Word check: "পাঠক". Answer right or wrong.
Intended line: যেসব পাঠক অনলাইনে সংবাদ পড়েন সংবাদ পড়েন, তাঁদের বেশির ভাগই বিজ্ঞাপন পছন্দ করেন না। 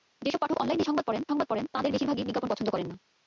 right